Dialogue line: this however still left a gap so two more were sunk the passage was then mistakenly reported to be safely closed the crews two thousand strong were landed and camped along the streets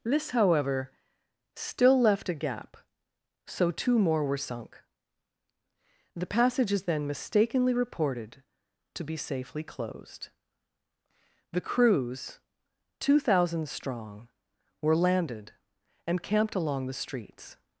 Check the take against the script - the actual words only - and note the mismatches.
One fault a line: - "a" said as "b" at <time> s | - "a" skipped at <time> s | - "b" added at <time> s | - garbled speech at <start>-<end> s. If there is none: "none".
- "was" said as "is" at 6.7 s